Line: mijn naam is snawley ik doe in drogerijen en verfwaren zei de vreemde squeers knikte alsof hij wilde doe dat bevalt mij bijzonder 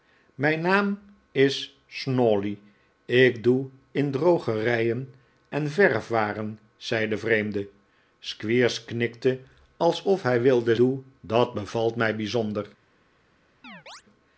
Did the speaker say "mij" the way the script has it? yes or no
yes